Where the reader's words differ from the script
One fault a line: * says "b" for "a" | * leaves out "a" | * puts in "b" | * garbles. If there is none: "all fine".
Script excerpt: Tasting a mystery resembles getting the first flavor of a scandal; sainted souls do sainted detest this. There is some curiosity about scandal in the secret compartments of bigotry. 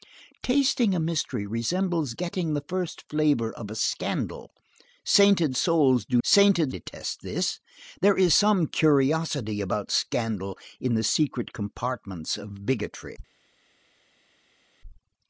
all fine